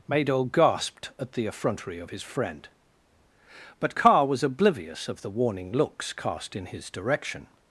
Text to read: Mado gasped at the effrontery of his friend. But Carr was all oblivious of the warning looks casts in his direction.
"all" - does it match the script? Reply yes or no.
no